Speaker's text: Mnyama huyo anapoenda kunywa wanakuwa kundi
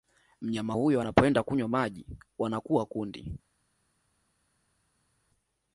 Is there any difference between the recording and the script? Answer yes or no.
yes